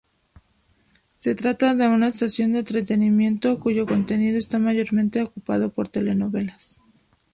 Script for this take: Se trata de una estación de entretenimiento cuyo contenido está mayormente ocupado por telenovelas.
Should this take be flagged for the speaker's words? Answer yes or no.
no